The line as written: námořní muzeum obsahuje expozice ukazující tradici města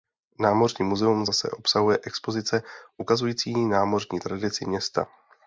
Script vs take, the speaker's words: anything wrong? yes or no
yes